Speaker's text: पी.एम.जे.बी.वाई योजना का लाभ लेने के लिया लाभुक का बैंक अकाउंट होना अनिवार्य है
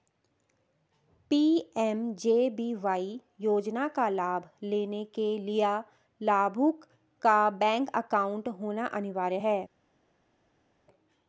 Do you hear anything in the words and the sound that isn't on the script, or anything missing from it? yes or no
no